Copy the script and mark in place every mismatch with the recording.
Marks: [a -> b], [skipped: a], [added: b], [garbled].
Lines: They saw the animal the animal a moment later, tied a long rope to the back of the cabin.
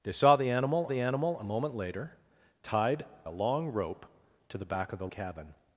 They saw the animal the animal a moment later, tied a long rope to the back of the cabin.